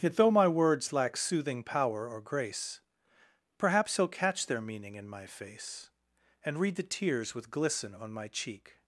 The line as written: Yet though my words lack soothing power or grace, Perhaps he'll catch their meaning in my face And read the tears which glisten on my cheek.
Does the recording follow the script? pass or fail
fail